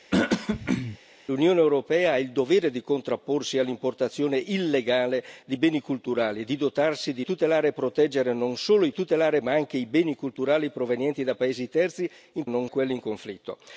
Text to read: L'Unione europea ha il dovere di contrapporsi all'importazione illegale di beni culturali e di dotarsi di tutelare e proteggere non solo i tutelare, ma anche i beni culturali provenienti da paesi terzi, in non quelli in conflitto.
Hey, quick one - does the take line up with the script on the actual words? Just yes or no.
yes